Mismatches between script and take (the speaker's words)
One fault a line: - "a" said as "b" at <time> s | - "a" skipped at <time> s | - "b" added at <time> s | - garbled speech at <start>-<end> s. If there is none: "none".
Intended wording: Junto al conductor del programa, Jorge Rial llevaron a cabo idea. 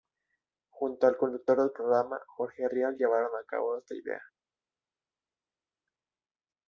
- "esta" added at 3.8 s